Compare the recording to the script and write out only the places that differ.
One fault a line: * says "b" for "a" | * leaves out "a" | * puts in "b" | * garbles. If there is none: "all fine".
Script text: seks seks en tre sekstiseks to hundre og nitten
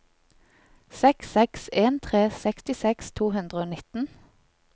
all fine